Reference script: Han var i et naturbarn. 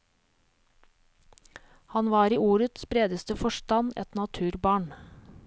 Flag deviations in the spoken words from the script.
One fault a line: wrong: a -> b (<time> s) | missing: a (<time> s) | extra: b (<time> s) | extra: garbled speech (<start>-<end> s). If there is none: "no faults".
extra: ordets bredeste forstand (2.4 s)